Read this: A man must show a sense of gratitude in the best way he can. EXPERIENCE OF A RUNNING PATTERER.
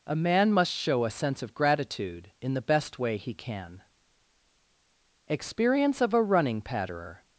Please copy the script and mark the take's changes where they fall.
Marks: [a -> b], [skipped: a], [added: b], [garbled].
A man must show a sense of gratitude in the best way he can. EXPERIENCE OF A RUNNING PATTERER.